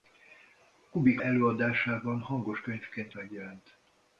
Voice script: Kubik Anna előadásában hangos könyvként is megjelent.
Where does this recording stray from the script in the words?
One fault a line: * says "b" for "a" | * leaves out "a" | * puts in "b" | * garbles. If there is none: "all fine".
* leaves out "Anna"
* leaves out "is"